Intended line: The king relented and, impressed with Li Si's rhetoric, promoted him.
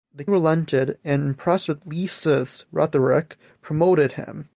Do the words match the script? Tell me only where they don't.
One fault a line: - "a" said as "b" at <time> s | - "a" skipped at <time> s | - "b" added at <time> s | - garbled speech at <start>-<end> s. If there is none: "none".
- "king" skipped at 0.2 s